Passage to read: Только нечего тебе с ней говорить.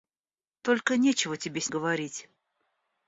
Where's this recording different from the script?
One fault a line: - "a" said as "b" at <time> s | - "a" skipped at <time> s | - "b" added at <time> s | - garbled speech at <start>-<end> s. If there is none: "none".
- "ней" skipped at 1.7 s